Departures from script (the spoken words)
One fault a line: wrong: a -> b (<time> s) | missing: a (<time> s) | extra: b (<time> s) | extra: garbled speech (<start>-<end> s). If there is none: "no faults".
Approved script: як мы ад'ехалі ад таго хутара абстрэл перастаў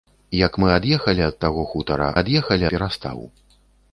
wrong: абстрэл -> ад'ехалі (2.2 s)